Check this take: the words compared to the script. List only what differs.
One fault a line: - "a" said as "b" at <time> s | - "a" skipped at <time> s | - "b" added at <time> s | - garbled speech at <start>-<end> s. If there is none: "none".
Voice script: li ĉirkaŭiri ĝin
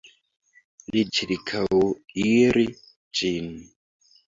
none